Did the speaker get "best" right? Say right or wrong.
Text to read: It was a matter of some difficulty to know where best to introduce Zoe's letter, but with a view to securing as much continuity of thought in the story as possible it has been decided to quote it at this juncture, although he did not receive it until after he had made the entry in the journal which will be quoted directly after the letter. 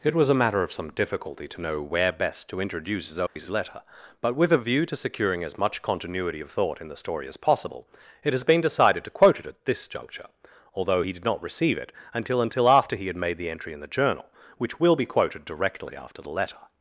right